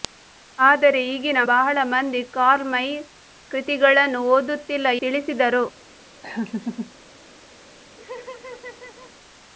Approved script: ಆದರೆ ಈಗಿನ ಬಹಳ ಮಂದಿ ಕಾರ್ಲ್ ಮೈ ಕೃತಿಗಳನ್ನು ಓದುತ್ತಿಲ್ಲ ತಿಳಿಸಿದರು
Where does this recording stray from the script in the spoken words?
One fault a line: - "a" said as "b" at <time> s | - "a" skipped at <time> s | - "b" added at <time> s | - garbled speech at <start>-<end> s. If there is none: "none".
none